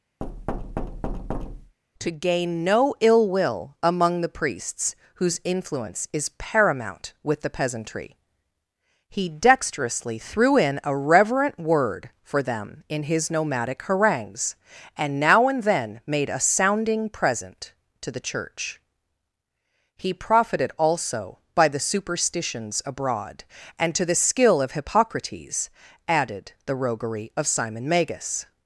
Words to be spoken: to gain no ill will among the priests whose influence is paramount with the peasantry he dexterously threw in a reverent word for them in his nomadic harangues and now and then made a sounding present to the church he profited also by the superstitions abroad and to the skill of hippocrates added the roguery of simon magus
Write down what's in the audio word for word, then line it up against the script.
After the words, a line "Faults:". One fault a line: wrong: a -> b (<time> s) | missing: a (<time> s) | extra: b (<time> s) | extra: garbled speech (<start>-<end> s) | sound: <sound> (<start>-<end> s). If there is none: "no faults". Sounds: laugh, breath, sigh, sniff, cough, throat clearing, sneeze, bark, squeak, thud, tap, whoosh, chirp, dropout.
to gain no ill will among the priests whose influence is paramount with the peasantry he dexterously threw in a reverent word for them in his nomadic harangues and now and then made a sounding present to the church he profited also by the superstitions abroad and to the skill of hippocrates added the roguery of simon magus
Faults:
sound: thud (0.2-1.8 s)